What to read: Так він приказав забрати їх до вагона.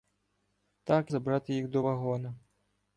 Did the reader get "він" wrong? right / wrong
wrong